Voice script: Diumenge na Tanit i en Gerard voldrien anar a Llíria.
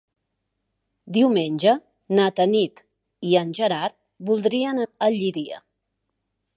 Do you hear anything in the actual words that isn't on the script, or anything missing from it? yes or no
yes